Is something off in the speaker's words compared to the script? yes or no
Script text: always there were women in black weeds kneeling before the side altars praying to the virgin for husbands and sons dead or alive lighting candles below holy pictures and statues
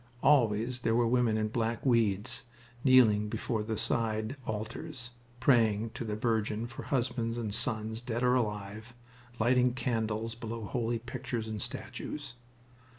no